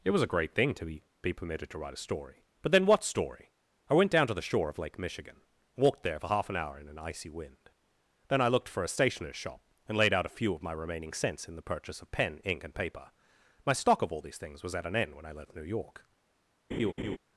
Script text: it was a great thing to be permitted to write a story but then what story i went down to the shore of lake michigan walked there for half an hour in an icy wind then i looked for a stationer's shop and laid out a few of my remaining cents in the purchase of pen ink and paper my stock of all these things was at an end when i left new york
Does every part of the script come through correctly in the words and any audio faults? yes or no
no